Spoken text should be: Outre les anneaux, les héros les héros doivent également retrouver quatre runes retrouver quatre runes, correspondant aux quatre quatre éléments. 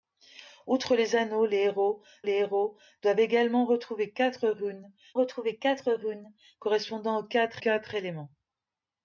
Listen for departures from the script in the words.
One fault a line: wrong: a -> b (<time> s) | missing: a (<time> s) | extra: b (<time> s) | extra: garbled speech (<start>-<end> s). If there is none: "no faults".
no faults